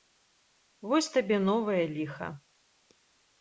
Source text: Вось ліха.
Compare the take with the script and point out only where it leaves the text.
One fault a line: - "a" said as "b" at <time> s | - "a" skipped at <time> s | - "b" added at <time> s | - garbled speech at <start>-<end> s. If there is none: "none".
- "табе новае" added at 1.2 s